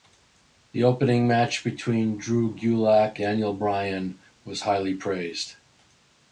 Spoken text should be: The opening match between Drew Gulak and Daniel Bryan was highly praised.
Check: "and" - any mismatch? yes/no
yes